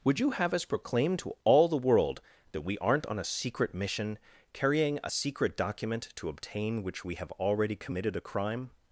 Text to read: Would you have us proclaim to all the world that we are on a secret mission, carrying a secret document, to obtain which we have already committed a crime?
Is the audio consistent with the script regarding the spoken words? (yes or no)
no